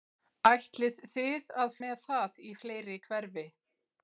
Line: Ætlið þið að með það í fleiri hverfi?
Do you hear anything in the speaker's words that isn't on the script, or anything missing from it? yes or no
no